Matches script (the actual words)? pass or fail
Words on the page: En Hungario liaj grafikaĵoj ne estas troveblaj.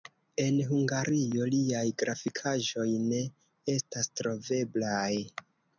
pass